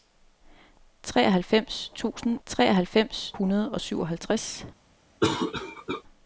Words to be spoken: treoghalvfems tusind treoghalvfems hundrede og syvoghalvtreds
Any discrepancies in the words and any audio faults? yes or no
yes